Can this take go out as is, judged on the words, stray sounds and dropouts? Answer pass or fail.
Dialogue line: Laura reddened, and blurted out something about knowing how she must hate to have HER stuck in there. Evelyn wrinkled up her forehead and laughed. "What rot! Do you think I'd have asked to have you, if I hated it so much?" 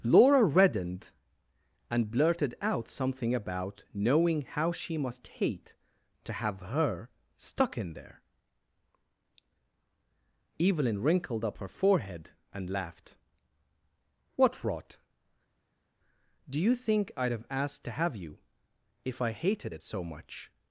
pass